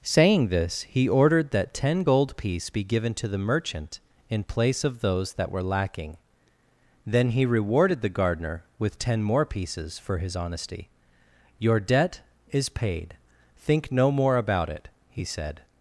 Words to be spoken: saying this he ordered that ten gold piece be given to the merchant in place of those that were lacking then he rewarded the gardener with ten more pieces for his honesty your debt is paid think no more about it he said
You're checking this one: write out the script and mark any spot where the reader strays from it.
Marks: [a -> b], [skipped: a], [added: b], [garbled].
saying this he ordered that ten gold piece be given to the merchant in place of those that were lacking then he rewarded the gardener with ten more pieces for his honesty your debt is paid think no more about it he said